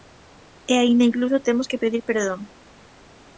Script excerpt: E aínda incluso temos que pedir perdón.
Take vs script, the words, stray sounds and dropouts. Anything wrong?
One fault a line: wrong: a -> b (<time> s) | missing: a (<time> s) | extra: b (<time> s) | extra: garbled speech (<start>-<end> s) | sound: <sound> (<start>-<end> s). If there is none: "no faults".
no faults